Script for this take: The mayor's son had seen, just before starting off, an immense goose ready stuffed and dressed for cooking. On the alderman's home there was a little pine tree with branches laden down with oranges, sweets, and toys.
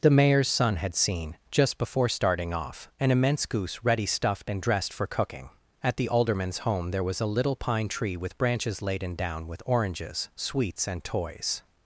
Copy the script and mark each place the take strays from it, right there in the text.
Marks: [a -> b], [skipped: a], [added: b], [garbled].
The mayor's son had seen, just before starting off, an immense goose ready stuffed and dressed for cooking. [On -> At] the alderman's home there was a little pine tree with branches laden down with oranges, sweets, and toys.